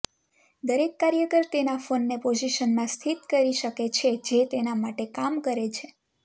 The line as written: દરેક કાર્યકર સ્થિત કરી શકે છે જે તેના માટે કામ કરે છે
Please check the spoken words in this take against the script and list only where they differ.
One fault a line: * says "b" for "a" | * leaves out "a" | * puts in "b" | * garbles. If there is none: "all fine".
* puts in "તેના ફોનને પોઝિશનમાં"